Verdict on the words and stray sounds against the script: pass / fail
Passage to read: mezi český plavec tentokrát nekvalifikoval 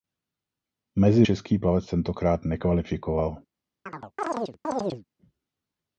fail